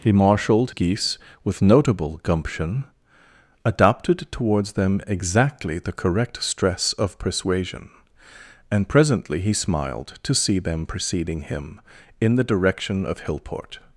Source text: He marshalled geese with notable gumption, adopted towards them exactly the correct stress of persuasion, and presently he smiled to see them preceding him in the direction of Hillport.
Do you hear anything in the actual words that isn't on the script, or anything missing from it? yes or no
no